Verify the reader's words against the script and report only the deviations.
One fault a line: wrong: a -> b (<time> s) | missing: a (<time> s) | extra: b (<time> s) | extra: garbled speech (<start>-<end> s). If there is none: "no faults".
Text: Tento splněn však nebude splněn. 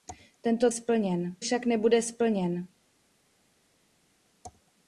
no faults